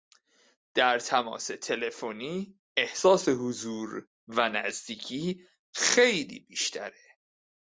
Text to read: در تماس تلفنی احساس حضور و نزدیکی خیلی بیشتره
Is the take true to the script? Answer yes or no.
yes